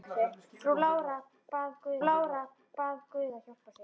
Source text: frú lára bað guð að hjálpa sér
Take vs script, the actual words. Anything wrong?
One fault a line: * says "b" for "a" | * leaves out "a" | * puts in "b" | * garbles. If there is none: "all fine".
* puts in "lára bað guð"